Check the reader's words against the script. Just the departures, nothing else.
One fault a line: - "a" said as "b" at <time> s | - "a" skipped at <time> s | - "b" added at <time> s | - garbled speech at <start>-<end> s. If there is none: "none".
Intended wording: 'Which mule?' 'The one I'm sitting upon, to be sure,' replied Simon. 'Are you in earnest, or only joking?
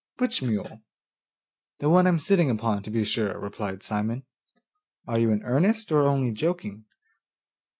none